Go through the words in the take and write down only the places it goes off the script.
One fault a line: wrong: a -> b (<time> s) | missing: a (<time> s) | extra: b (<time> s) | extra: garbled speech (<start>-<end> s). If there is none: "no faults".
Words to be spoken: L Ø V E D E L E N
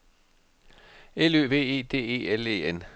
no faults